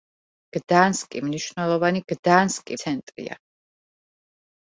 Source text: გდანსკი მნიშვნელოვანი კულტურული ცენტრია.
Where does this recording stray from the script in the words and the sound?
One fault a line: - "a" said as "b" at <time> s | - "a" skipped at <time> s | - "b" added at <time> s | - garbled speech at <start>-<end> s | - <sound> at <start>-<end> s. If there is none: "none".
- "კულტურული" said as "გდანსკი" at 2.1 s